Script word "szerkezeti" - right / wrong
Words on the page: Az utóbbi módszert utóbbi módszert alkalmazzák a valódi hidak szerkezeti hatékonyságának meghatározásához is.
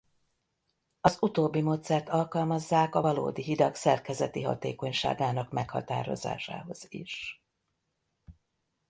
right